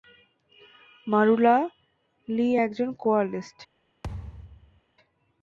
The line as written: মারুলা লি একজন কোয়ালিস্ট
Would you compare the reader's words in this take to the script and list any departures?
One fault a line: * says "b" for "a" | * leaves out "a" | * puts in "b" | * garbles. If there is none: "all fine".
all fine